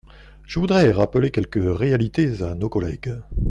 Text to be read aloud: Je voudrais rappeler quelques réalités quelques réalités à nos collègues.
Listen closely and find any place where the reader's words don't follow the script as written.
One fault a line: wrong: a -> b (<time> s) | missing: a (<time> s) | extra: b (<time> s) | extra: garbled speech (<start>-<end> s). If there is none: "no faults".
missing: quelques réalités (2.4 s)